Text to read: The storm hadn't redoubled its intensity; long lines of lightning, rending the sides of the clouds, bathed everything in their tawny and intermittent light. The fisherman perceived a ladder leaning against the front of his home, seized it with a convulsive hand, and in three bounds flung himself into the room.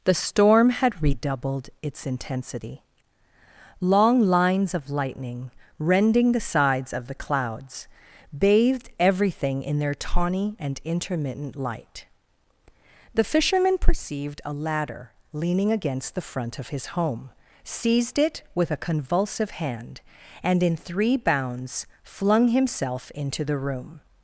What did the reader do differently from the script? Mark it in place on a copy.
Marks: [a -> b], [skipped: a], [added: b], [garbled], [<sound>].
The storm [hadn't -> had] redoubled its intensity; long lines of lightning, rending the sides of the clouds, bathed everything in their tawny and intermittent light. The fisherman perceived a ladder leaning against the front of his home, seized it with a convulsive hand, and in three bounds flung himself into the room.